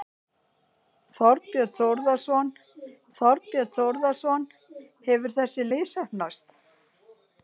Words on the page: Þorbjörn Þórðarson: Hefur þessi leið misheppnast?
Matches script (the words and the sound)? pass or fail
fail